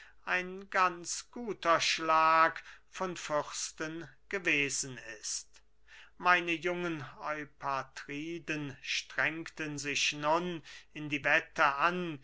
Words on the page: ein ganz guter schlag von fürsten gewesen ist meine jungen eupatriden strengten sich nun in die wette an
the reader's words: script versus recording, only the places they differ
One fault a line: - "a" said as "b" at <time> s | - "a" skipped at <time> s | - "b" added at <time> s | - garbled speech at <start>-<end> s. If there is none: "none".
none